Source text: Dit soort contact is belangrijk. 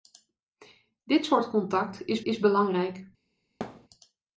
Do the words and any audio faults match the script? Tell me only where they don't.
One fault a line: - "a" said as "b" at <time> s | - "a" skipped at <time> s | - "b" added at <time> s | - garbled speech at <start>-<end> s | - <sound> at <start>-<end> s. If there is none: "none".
- "is" added at 2.2 s
- thud at 3.6-3.9 s